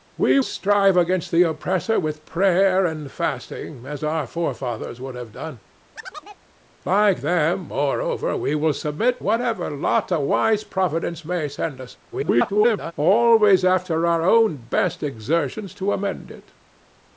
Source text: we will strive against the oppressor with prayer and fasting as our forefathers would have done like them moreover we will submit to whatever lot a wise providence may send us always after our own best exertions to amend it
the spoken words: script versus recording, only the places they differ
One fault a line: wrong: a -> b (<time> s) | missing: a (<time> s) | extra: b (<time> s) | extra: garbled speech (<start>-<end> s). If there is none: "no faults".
missing: will (0.4 s)
missing: to (9.2 s)
extra: garbled speech (12.1-12.9 s)